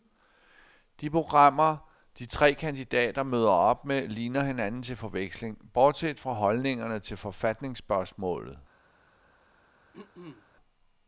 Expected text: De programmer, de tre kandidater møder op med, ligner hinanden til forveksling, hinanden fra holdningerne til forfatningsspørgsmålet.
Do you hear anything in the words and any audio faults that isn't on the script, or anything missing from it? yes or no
yes